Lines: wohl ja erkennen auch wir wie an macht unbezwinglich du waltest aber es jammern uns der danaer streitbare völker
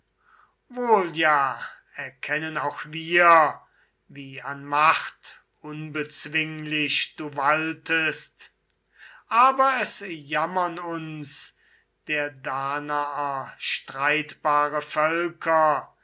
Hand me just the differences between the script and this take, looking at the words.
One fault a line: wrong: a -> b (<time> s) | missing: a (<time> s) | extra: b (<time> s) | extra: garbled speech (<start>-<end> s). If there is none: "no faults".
no faults